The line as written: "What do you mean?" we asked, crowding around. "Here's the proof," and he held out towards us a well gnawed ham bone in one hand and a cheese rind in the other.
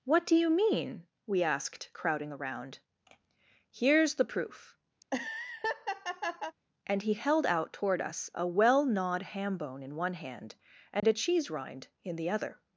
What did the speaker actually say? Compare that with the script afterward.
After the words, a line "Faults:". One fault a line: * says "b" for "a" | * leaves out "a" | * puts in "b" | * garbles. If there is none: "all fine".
"What do you mean?" we asked, crowding around. "Here's the proof," and he held out toward us a well gnawed ham bone in one hand and a cheese rind in the other.
Faults:
* says "toward" for "towards"